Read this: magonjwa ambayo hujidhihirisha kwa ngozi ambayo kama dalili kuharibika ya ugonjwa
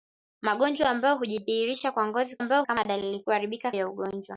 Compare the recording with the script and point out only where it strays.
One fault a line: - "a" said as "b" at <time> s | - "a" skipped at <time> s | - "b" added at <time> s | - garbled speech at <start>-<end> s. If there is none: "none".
none